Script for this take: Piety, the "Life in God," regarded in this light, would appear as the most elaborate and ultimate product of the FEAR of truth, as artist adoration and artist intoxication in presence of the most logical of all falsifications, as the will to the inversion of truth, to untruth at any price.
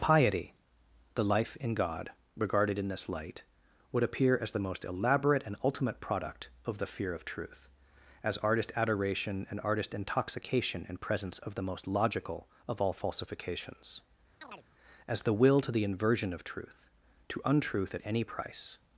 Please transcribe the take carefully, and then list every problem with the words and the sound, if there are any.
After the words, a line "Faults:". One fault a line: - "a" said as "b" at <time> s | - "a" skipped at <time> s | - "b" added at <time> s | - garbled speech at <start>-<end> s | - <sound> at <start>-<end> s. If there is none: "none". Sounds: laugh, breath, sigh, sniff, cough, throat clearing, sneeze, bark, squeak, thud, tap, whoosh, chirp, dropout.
Piety, the "Life in God," regarded in this light, would appear as the most elaborate and ultimate product of the FEAR of truth, as artist adoration and artist intoxication in presence of the most logical of all falsifications, as the will to the inversion of truth, to untruth at any price.
Faults:
- chirp at 14.4-14.7 s